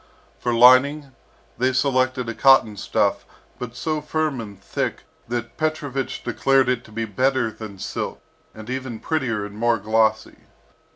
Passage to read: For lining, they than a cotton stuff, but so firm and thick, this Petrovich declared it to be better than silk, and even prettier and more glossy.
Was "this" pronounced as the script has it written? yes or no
no